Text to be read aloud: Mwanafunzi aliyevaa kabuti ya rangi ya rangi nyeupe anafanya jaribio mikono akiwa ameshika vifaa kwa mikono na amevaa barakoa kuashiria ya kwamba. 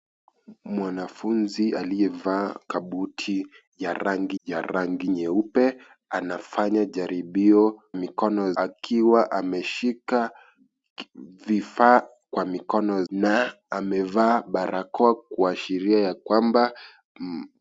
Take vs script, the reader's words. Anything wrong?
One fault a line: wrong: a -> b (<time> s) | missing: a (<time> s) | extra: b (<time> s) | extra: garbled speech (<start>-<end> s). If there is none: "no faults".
no faults